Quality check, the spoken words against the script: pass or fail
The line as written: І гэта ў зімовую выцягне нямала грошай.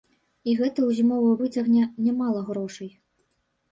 pass